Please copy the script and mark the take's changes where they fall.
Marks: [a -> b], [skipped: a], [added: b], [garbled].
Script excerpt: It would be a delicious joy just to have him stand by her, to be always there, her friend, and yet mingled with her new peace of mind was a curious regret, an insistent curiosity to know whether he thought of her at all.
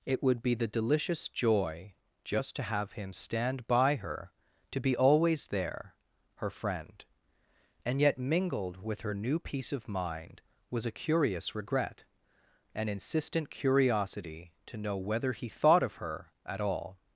It would be [a -> the] delicious joy just to have him stand by her, to be always there, her friend, and yet mingled with her new peace of mind was a curious regret, an insistent curiosity to know whether he thought of her at all.